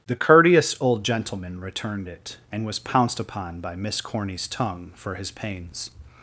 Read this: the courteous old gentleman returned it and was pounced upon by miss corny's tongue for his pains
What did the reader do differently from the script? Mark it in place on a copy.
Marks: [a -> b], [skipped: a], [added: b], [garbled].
the courteous old gentleman returned it and was pounced upon by miss corny's tongue for his pains